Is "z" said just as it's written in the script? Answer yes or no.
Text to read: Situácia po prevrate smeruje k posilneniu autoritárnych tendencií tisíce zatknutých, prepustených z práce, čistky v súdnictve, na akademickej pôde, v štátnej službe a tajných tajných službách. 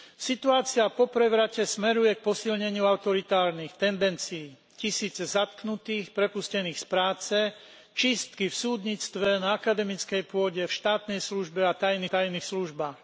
yes